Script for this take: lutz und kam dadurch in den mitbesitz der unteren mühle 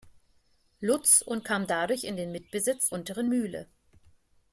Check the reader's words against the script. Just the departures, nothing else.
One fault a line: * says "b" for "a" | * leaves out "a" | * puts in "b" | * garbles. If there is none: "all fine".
* leaves out "der"